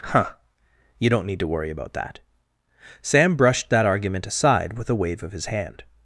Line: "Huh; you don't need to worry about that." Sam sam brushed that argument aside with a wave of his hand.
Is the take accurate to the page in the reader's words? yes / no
no